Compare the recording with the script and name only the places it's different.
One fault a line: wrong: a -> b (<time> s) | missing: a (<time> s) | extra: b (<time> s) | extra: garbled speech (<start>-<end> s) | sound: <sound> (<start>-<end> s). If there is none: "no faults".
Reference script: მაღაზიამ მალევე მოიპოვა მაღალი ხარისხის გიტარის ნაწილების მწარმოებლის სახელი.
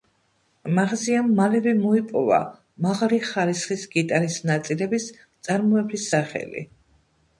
no faults